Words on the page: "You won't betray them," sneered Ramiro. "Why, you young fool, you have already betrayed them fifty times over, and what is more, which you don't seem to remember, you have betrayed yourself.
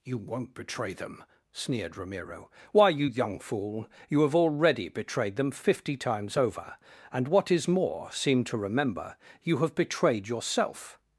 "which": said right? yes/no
no